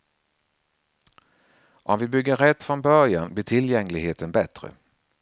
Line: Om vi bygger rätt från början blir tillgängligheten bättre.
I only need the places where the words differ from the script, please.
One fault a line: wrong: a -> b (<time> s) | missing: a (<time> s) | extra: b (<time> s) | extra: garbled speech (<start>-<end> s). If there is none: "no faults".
no faults